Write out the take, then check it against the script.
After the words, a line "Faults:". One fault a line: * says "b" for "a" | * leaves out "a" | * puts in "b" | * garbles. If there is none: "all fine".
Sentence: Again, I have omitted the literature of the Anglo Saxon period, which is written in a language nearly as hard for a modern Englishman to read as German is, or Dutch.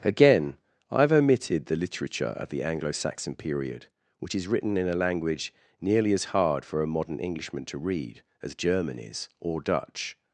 Again, I have omitted the literature of the Anglo Saxon period, which is written in a language nearly as hard for a modern Englishman to read as German is, or Dutch.
Faults:
all fine